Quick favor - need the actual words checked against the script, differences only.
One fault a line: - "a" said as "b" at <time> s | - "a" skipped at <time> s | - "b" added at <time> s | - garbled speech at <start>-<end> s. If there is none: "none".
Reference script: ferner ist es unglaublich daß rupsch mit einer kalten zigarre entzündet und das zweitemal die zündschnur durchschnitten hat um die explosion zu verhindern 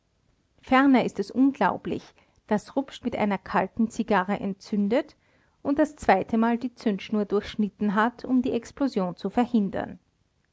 none